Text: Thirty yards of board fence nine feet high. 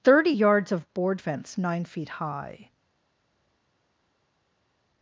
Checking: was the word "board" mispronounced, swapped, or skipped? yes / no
no